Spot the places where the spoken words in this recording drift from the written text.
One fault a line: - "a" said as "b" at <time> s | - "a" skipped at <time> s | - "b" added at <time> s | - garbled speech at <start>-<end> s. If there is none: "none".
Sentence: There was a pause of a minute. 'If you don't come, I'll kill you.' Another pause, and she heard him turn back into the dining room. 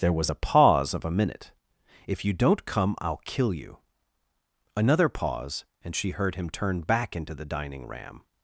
- "room" said as "ram" at 7.9 s